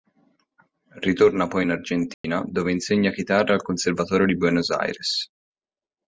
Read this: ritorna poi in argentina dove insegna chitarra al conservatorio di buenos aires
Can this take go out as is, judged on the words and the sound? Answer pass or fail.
fail